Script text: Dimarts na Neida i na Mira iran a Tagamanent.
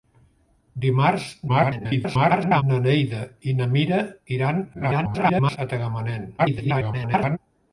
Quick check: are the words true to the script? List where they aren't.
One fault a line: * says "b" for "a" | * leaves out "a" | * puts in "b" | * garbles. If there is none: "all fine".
* garbles
* garbles
* garbles